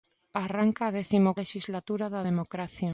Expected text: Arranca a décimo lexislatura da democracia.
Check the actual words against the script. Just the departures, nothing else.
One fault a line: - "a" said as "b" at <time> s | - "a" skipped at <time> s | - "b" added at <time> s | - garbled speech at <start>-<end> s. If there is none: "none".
none